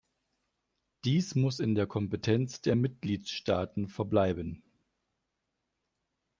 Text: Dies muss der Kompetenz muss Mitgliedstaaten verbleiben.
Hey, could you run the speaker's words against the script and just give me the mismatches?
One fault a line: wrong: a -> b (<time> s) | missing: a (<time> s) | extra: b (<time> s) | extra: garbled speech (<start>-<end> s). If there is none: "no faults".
extra: in (1.6 s)
wrong: muss -> der (2.6 s)